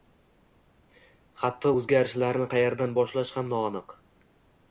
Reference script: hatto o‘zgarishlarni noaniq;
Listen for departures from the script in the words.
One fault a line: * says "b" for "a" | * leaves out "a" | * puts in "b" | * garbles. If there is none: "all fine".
* puts in "qayerdan boshlash ham"